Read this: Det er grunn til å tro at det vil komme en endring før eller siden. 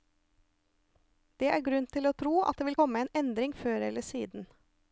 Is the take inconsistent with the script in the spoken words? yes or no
no